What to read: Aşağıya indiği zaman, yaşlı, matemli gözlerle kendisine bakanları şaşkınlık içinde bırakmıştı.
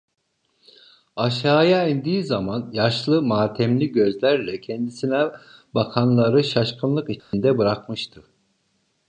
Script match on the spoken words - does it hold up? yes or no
yes